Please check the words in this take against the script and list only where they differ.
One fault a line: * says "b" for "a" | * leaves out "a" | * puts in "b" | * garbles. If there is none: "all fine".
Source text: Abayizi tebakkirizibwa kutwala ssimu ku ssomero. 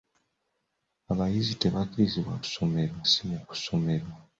* says "ssomero" for "kutwala"